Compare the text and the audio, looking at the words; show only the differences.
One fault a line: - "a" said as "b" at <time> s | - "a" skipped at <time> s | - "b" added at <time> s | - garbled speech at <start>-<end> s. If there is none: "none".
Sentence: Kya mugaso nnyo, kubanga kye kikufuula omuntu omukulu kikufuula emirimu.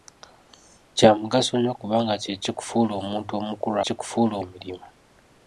none